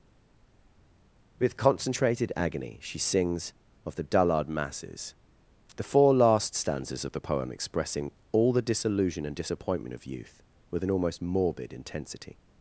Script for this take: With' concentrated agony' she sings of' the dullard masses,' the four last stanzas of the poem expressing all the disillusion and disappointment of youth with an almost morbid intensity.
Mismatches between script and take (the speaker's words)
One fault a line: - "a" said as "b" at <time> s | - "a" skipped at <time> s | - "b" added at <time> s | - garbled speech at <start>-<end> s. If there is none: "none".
none